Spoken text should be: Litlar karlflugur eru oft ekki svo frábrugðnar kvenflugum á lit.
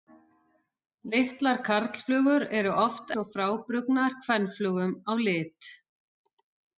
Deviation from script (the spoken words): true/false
true